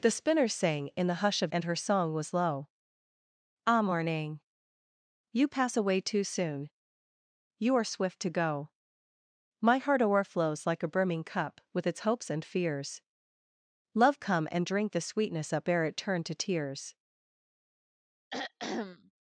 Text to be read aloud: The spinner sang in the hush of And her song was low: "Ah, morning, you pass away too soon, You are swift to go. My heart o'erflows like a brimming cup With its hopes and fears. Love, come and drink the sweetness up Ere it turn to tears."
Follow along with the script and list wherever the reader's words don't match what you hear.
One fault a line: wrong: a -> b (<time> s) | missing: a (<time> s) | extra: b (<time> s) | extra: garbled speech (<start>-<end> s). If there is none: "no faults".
no faults